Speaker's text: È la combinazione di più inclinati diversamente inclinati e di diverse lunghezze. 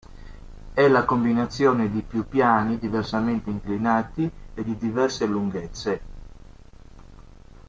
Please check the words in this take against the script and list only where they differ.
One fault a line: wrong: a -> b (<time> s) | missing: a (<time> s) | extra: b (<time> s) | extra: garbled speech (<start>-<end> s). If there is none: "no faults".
wrong: inclinati -> piani (2.3 s)